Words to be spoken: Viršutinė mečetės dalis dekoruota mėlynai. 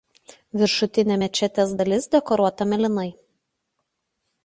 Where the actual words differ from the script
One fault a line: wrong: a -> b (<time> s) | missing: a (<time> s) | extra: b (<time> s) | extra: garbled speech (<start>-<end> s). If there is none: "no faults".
no faults